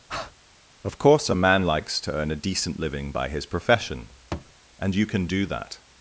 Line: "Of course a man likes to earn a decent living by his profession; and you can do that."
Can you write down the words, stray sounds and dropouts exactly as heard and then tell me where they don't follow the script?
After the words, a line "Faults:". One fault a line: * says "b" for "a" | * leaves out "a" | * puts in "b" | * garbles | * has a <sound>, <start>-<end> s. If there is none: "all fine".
"Of course a man likes to earn a decent living by his profession; and you can do that."
Faults:
* has a breath, 0.1-0.3 s
* has a thud, 4.3-4.5 s